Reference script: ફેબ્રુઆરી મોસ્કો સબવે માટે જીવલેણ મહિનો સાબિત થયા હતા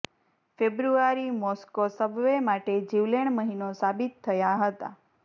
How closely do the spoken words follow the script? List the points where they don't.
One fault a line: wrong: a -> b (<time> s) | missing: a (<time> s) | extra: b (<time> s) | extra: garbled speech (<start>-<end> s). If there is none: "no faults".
no faults